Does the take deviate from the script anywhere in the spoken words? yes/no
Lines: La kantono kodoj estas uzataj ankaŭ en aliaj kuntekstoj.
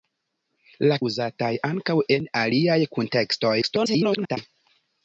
yes